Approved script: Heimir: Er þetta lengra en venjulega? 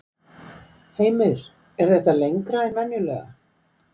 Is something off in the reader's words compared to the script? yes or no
no